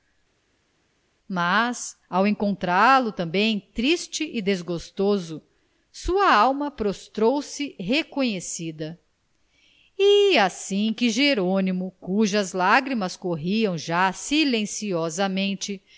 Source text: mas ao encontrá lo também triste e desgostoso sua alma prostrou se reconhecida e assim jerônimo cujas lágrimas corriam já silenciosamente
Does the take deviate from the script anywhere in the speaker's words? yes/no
yes